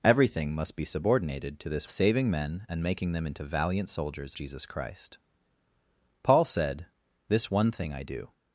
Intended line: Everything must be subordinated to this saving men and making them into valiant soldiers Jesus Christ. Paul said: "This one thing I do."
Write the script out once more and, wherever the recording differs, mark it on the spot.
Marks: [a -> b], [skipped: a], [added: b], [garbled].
Everything must be subordinated to this saving men and making them into valiant soldiers Jesus Christ. Paul said: "This one thing I do."